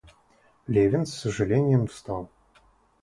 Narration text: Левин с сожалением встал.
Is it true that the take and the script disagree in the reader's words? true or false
false